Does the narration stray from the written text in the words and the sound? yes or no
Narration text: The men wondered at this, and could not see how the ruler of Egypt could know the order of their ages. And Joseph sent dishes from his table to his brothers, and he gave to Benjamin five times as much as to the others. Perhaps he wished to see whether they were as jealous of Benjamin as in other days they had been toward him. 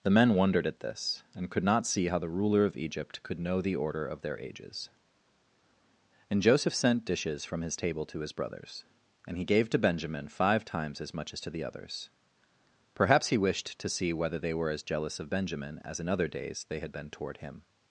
no